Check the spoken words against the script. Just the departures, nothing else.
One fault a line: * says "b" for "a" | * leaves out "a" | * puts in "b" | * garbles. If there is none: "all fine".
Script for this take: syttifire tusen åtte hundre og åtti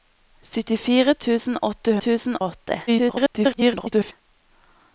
* says "tusen" for "hundre"
* garbles